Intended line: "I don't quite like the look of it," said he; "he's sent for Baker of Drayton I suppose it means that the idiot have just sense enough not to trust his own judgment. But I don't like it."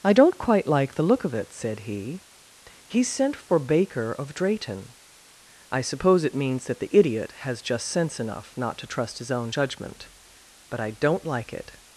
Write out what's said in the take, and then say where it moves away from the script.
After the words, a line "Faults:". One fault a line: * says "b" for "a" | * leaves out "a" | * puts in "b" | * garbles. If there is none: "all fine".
"I don't quite like the look of it," said he; "he's sent for Baker of Drayton I suppose it means that the idiot has just sense enough not to trust his own judgment. But I don't like it."
Faults:
* says "has" for "have"